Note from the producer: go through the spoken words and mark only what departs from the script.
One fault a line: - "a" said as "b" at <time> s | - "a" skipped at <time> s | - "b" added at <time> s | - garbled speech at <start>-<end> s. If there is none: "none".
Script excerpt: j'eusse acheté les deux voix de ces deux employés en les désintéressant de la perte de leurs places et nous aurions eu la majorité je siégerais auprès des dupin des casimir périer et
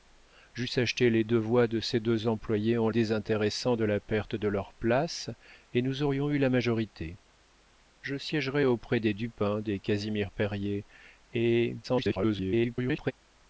- "les" skipped at 2.9 s
- garbled speech at 11.8-13.1 s